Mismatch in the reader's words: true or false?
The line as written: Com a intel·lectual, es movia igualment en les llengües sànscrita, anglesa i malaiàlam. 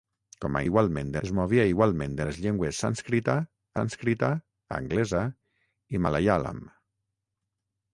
true